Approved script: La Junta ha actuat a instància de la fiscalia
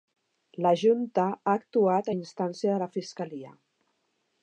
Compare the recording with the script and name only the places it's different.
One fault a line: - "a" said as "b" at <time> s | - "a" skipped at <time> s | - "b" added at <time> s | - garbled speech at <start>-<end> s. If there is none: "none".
none